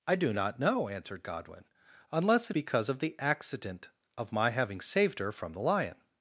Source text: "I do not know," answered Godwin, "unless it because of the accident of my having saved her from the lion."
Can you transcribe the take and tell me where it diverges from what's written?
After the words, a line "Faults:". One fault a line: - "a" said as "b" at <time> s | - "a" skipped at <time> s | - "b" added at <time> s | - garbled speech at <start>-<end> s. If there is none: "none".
"I do not know," answered Godwin, "unless it because of the accident of my having saved her from the lion."
Faults:
none